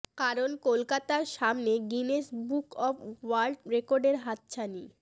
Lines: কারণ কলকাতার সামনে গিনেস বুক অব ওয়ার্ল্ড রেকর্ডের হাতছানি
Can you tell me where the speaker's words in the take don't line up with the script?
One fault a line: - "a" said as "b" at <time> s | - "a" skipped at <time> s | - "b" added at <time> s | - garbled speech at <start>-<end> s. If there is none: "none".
none